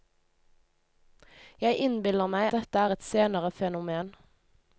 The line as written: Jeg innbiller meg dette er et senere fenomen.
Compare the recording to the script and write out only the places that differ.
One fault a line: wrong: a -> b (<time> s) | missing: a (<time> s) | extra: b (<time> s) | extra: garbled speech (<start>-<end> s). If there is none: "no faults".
no faults